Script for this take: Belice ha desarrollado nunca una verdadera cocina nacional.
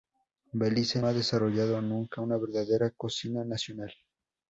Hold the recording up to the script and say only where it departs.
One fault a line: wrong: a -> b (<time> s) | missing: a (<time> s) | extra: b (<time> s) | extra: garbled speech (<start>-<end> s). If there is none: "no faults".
no faults